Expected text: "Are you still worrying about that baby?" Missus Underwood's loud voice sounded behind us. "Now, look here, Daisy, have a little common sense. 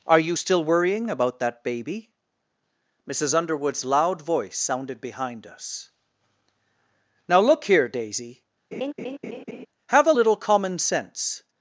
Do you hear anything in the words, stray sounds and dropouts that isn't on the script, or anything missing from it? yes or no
yes